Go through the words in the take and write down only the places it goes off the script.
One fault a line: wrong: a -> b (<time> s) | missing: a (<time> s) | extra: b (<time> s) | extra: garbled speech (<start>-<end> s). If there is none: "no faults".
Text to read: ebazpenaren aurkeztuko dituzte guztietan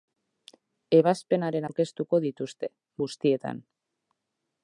no faults